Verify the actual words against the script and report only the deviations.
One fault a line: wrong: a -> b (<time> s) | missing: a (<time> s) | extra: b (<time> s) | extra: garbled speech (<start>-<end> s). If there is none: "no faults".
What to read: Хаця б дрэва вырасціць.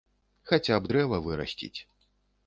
no faults